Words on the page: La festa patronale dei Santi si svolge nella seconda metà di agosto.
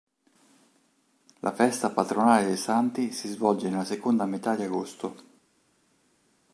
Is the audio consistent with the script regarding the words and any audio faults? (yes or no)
yes